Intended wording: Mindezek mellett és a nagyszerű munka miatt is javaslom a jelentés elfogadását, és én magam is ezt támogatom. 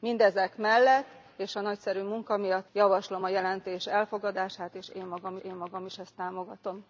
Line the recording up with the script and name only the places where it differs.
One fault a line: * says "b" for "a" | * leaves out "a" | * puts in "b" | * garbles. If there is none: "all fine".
* leaves out "is"
* puts in "én magam"